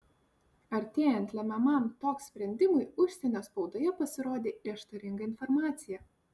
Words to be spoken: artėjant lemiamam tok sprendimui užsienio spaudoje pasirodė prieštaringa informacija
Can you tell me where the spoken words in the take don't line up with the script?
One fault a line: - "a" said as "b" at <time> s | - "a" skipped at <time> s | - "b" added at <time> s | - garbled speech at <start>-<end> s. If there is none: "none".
none